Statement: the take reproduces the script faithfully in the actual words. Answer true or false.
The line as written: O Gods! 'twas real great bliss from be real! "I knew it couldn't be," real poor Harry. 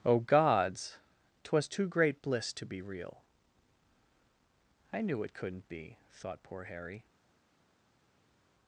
false